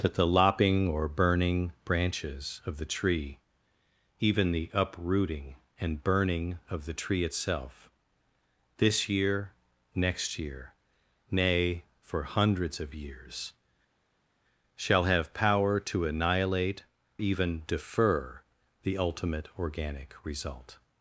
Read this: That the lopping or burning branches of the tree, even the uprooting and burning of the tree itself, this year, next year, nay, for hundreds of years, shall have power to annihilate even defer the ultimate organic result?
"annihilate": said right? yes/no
yes